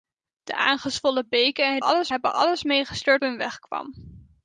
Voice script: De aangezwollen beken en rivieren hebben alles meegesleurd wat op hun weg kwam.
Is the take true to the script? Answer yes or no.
no